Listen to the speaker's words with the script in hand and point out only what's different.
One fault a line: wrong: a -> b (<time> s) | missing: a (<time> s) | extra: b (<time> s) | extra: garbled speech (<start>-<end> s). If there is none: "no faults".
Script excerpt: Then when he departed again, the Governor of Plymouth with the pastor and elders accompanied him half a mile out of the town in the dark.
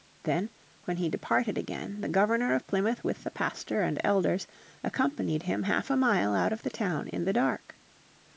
no faults